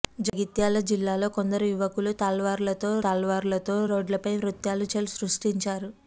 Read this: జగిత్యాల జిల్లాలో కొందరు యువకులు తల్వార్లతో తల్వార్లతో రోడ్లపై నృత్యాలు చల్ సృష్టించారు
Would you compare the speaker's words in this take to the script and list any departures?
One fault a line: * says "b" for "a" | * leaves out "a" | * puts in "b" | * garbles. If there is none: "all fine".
all fine